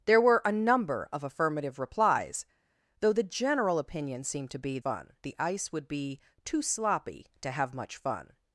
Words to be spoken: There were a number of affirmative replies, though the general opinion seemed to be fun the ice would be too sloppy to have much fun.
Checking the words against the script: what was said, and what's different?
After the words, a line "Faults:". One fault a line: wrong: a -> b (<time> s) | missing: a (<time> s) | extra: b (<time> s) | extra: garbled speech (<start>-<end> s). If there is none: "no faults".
There were a number of affirmative replies, though the general opinion seemed to be fun the ice would be too sloppy to have much fun.
Faults:
no faults